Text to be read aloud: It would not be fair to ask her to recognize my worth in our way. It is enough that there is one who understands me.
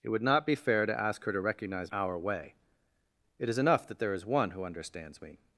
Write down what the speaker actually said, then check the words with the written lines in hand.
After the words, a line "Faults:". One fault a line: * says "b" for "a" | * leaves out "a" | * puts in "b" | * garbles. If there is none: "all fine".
It would not be fair to ask her to recognize our way. It is enough that there is one who understands me.
Faults:
* leaves out "my worth in"